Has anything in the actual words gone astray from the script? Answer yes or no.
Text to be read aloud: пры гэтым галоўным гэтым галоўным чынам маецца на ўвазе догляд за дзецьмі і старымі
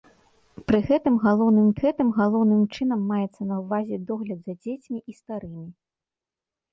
no